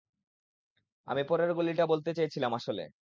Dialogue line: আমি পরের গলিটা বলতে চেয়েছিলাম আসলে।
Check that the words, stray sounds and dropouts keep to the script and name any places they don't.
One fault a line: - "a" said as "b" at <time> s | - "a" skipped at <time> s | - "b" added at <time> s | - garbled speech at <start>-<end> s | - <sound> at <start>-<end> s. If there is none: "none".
none